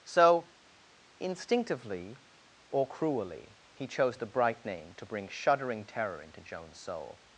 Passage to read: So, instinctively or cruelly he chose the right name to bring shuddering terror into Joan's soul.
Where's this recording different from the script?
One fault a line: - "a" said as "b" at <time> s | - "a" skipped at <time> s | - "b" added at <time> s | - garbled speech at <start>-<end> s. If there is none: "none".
- "right" said as "bright" at 4.3 s